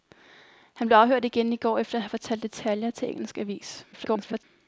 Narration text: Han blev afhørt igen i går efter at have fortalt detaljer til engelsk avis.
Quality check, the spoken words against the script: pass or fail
fail